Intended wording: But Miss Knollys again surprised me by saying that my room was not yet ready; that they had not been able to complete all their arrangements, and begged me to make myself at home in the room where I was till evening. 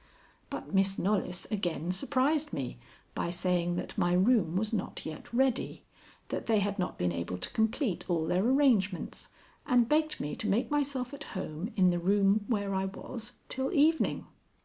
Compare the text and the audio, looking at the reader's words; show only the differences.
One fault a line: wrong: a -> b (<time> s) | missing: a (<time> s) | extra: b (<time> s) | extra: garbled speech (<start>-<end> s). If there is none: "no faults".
no faults